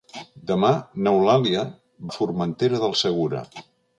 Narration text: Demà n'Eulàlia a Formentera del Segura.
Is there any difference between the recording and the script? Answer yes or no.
no